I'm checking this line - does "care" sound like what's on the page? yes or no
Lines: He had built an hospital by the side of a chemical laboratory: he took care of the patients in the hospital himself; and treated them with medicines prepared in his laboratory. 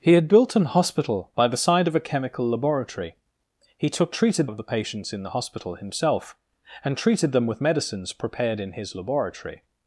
no